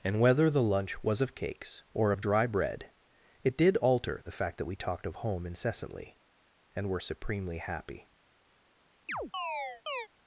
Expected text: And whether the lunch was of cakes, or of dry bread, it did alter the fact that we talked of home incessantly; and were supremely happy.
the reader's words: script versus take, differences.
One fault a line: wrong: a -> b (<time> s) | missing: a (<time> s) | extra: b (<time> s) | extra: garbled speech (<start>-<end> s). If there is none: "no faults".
no faults